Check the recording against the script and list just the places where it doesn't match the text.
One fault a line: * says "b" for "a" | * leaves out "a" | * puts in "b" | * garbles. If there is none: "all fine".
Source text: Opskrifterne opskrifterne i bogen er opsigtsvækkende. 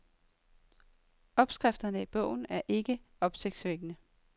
* leaves out "opskrifterne"
* puts in "ikke"